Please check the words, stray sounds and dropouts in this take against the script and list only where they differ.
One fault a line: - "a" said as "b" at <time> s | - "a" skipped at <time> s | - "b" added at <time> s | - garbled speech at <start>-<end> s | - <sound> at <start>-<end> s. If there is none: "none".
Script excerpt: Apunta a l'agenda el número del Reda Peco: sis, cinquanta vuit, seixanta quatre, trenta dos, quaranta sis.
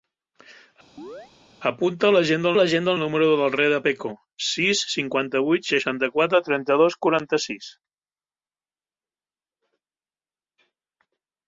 - chirp at 1.0-1.3 s
- "l'agenda" added at 2.6 s